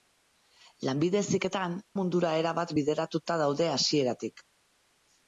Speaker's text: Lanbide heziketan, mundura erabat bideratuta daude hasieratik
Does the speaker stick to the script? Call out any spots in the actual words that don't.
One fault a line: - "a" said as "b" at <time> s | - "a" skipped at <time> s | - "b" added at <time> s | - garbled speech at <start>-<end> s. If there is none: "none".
none